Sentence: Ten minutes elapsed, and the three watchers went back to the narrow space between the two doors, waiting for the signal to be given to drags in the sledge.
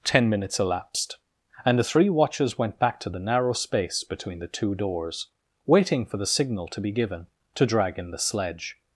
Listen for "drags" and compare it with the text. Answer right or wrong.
wrong